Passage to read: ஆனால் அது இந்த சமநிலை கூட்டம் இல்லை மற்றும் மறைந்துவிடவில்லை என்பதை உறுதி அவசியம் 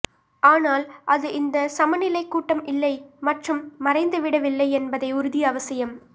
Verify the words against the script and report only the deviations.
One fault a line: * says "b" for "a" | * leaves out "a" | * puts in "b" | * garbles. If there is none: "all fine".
all fine